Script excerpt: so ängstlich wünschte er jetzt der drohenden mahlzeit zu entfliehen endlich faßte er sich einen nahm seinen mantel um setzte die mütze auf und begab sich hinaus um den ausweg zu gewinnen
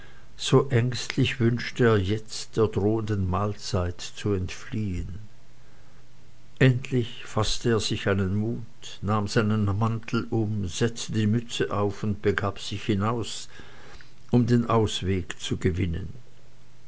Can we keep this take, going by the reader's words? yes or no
no